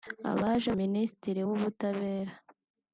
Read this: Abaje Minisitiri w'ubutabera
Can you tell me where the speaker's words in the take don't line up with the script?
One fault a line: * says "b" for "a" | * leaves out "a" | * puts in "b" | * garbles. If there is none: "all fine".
all fine